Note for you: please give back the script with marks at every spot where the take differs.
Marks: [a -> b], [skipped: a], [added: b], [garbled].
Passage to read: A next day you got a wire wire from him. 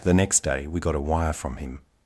[A -> The] next day [you -> we] got a wire [skipped: wire] from him.